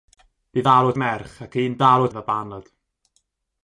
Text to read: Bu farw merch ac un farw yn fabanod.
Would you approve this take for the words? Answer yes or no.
yes